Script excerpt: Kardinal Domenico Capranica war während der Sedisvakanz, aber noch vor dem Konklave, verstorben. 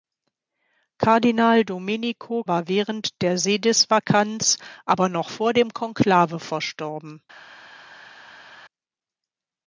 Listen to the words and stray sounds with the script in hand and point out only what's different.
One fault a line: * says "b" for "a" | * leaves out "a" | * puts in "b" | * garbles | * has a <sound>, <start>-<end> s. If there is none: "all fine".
* leaves out "Capranica"